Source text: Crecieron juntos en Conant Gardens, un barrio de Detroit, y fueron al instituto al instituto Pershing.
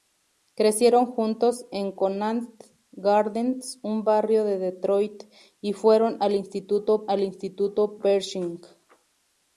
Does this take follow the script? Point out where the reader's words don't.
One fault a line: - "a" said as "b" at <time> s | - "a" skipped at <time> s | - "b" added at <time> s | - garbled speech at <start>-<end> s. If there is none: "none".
none